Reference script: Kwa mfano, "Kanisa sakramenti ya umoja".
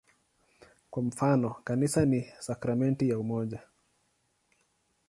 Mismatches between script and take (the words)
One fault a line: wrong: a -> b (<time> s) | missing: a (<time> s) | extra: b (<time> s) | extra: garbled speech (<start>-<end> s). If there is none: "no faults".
extra: ni (2.0 s)